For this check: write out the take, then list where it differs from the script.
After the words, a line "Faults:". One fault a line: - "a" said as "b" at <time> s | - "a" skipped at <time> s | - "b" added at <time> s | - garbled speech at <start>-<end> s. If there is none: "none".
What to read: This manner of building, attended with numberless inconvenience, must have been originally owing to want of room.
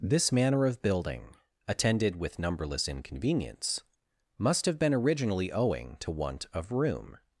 This manner of building, attended with numberless inconvenience, must have been originally owing to want of room.
Faults:
none